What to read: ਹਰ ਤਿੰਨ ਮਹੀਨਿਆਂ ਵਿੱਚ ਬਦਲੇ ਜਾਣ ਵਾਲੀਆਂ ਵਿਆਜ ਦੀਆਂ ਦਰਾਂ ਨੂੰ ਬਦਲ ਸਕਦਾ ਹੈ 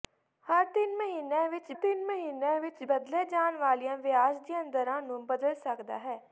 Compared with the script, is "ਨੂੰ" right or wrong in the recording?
right